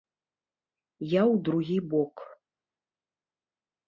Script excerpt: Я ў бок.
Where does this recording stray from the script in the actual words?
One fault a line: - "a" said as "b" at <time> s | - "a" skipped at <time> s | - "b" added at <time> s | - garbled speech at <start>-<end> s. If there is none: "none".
- "другі" added at 1.5 s